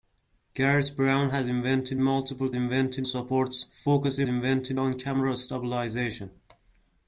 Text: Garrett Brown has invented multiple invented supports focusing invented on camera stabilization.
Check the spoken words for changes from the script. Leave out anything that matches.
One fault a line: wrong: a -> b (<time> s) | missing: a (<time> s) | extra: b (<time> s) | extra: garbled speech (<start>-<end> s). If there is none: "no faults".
no faults